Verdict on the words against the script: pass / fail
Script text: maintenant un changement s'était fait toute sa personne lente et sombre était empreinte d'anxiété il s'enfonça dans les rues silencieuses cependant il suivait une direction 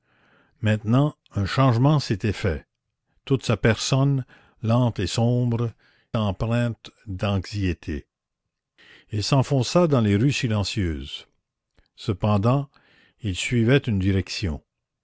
fail